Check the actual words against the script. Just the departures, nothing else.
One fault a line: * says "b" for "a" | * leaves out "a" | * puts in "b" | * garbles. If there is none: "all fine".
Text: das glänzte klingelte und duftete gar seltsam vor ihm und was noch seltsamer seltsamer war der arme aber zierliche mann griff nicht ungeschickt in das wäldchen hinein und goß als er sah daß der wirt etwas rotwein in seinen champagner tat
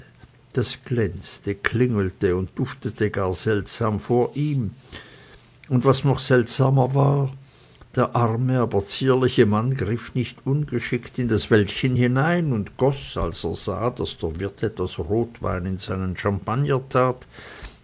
* leaves out "seltsamer"